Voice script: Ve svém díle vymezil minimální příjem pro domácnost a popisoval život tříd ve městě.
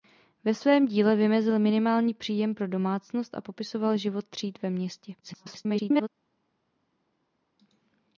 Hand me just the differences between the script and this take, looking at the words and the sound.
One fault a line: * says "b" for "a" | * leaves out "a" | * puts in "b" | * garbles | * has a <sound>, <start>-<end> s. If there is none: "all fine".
* garbles